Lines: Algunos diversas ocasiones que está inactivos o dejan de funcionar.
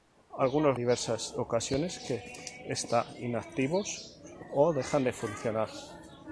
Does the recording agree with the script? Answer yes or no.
yes